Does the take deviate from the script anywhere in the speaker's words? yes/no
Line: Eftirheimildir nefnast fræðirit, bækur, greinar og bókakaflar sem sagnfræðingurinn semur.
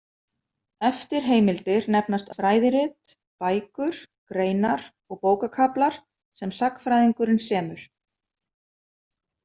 no